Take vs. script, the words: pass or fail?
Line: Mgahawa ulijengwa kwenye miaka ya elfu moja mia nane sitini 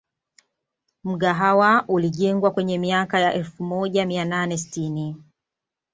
pass